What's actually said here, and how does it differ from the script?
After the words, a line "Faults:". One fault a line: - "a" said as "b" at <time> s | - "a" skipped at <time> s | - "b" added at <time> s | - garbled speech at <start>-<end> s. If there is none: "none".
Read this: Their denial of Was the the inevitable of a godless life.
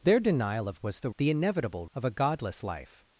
Their denial of Was the the inevitable of a godless life.
Faults:
none